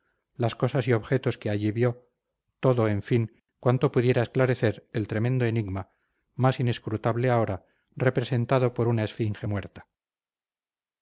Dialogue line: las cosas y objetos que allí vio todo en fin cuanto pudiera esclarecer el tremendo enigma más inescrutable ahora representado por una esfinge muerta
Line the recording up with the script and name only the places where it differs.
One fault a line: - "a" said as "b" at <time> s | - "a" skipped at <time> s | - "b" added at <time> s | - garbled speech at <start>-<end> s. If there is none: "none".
none